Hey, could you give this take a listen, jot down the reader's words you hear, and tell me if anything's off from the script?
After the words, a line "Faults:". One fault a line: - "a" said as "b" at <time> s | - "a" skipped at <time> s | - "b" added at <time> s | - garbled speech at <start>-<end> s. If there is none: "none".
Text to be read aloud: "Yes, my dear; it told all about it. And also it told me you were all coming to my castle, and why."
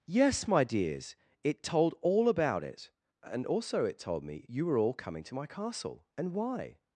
"Yes, my dears; it told all about it. And also it told me you were all coming to my castle, and why."
Faults:
- "dear" said as "dears" at 0.6 s